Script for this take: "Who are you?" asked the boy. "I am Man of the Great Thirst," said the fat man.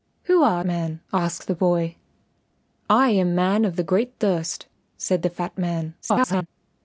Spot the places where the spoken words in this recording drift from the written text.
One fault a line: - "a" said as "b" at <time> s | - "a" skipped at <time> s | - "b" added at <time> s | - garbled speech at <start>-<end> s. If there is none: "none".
- "you" said as "man" at 0.6 s
- garbled speech at 6.0-6.5 s